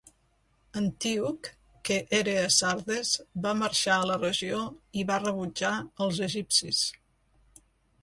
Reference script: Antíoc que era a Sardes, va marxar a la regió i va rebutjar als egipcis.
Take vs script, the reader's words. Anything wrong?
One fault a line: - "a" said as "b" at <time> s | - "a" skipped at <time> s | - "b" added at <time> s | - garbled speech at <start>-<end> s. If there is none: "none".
none